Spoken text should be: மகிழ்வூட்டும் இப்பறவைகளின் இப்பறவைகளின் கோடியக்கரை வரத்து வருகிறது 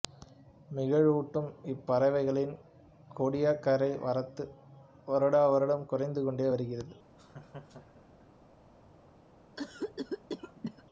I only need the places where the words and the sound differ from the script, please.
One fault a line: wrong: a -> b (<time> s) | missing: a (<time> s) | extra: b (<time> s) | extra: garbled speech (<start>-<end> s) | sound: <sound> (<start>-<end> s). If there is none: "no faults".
missing: இப்பறவைகளின் (2.5 s)
extra: வருடாவருடம் குறைந்து கொண்டே (5.1 s)
sound: laugh (7.2-8.3 s)
sound: cough (9.6-10.8 s)